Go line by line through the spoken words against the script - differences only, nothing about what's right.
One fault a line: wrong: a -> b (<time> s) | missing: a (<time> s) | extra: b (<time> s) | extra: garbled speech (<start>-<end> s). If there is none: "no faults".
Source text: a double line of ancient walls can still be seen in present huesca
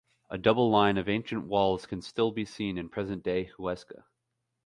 extra: day (3.2 s)